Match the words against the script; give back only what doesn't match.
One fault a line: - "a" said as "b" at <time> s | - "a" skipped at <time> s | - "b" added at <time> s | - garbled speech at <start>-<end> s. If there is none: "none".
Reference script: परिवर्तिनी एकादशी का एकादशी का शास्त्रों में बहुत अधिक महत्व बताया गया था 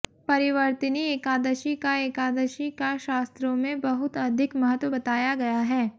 - "था" said as "है" at 5.6 s